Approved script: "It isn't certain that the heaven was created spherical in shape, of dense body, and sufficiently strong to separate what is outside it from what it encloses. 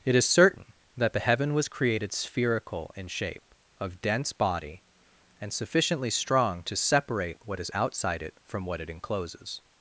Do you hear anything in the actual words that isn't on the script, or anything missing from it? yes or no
yes